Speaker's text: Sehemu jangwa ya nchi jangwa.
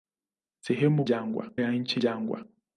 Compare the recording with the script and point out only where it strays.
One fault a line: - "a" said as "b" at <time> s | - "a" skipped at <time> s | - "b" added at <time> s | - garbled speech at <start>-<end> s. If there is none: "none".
none